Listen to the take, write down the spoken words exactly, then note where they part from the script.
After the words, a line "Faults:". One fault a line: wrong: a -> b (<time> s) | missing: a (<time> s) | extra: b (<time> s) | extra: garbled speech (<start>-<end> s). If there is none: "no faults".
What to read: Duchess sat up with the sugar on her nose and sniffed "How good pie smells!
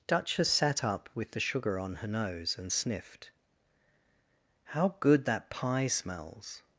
Duchess sat up with the sugar on her nose and sniffed "How good that pie smells!
Faults:
extra: that (5.3 s)